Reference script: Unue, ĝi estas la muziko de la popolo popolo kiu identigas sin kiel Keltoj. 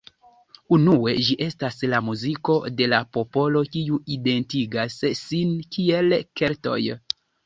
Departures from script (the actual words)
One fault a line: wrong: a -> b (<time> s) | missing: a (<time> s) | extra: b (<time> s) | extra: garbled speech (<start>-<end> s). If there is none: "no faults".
missing: popolo (3.6 s)